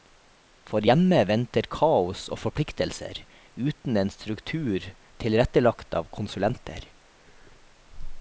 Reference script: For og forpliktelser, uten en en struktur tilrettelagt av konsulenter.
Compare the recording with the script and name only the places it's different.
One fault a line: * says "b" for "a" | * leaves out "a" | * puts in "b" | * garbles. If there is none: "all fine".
* puts in "hjemme venter kaos"
* leaves out "en"